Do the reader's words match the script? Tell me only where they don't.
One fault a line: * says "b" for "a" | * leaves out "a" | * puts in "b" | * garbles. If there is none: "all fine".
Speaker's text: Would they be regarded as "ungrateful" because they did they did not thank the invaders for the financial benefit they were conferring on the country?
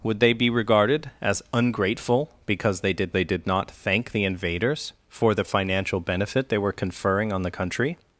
all fine